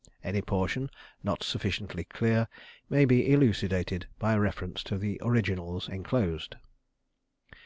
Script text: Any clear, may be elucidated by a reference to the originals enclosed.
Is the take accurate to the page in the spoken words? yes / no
no